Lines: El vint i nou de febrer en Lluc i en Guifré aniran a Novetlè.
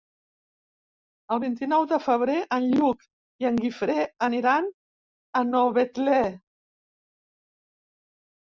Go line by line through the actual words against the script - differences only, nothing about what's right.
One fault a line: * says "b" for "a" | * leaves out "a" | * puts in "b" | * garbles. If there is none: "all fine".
all fine